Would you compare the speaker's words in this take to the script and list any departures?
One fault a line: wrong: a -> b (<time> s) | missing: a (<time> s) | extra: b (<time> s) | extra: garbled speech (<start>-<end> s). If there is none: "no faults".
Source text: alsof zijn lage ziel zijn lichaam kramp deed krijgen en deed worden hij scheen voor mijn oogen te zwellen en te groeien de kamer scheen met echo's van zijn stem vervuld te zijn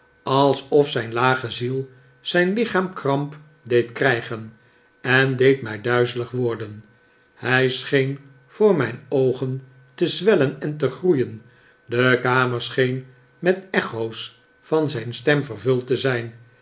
extra: mij duizelig (5.6 s)